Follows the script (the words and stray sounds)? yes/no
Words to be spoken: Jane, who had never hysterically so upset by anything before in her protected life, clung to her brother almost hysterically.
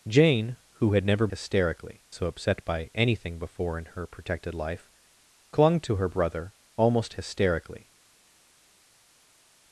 yes